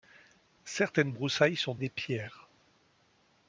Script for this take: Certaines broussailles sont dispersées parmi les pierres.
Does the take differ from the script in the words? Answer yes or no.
yes